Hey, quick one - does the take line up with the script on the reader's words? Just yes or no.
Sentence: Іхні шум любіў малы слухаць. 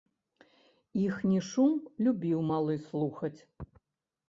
yes